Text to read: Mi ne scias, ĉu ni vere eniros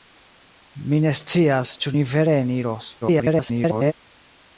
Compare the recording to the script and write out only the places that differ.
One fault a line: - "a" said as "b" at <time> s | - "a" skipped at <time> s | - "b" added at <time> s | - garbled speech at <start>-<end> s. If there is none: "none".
- garbled speech at 3.0-3.9 s